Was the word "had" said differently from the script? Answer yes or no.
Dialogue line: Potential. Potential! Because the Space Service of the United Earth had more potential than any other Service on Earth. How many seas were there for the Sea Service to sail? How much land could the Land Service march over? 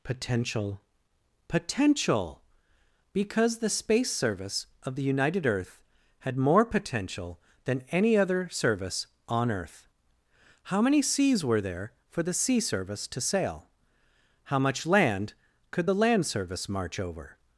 no